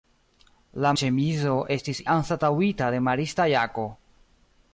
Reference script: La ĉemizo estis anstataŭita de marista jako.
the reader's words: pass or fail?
pass